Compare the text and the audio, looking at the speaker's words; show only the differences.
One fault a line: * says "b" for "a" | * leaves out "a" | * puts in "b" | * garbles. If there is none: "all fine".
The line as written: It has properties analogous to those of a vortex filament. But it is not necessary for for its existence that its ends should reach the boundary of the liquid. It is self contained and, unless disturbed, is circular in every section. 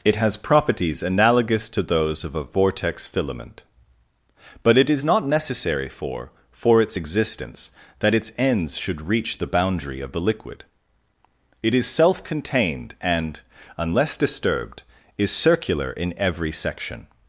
all fine